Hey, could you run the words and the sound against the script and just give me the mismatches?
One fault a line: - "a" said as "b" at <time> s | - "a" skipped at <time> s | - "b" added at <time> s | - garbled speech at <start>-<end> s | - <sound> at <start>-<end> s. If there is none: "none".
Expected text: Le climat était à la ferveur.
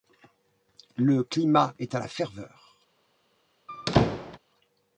- "était" said as "est" at 1.8 s
- squeak at 3.7-4.4 s